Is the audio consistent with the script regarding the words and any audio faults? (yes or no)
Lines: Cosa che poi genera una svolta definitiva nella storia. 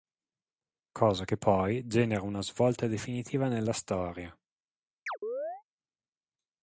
no